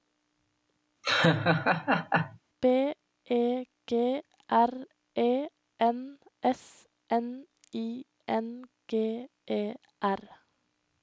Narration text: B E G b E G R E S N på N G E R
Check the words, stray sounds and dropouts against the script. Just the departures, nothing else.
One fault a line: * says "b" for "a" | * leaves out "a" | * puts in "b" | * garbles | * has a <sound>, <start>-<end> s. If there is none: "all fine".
* has a laugh, 1.0-2.4 s
* says "R" for "b"
* says "N" for "G R E"
* says "I" for "på"